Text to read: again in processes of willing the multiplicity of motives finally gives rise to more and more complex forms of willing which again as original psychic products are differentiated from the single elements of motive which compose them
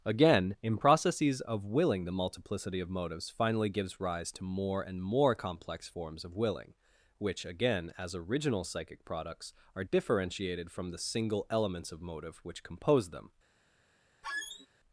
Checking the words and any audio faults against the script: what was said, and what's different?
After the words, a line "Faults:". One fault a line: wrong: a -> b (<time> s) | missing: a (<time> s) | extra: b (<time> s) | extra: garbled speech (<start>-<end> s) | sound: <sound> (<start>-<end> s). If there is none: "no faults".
again in processes of willing the multiplicity of motives finally gives rise to more and more complex forms of willing which again as original psychic products are differentiated from the single elements of motive which compose them
Faults:
sound: squeak (14.2-14.7 s)